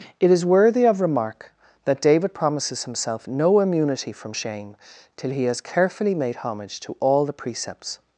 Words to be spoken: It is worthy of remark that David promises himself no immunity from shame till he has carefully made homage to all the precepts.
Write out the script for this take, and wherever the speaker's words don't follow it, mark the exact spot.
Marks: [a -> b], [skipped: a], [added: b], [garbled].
It is worthy of remark that David promises himself no immunity from shame till he has carefully made homage to all the precepts.